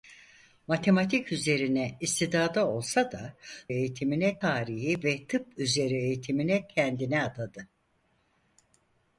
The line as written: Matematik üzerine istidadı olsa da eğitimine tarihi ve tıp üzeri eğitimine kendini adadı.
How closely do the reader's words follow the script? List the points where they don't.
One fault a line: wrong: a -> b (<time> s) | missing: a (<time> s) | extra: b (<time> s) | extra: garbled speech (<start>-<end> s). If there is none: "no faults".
no faults